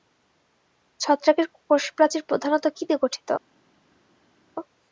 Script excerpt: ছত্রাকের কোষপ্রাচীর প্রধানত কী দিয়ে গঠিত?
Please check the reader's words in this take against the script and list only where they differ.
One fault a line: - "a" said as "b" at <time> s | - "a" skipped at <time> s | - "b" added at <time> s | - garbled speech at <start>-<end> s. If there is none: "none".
none